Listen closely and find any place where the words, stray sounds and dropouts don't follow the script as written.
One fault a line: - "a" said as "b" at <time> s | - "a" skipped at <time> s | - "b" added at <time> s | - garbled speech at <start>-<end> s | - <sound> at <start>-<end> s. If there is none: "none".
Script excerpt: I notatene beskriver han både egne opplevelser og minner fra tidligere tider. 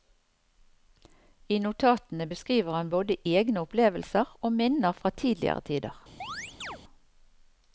- chirp at 6.2-6.8 s